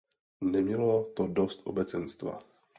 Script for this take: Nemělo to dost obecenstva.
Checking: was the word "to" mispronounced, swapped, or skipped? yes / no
no